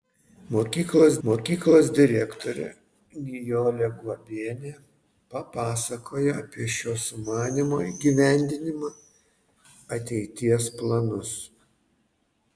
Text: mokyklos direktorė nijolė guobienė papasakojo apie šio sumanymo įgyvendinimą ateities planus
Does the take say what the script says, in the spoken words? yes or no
no